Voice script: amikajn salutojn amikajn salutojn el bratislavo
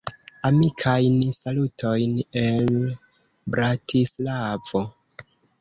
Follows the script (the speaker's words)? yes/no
no